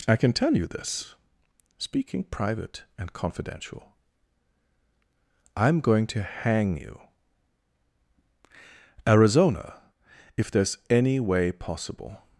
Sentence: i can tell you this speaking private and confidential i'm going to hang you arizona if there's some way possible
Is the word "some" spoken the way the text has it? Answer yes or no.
no